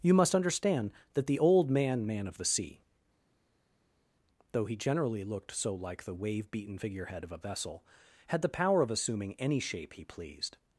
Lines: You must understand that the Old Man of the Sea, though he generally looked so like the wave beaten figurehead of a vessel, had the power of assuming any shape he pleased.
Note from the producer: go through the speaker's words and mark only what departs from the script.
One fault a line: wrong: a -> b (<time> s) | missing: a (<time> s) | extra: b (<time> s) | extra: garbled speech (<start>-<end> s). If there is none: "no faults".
extra: Man (2.1 s)